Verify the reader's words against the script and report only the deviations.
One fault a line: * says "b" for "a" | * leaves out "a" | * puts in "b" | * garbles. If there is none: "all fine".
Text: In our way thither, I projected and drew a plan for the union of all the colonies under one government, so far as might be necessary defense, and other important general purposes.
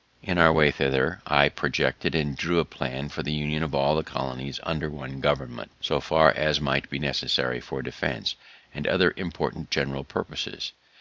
* puts in "for"